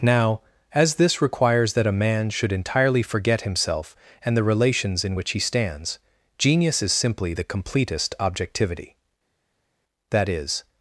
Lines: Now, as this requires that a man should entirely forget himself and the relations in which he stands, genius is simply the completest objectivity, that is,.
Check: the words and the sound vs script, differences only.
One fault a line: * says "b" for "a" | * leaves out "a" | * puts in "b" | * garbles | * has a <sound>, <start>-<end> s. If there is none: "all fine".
all fine